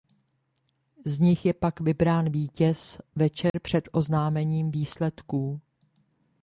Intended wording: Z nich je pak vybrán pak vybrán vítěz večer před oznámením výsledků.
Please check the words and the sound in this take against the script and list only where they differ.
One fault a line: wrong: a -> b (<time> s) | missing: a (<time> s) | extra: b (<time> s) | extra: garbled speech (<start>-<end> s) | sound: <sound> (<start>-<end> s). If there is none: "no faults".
missing: pak vybrán (2.3 s)
sound: dropout (3.5-3.5 s)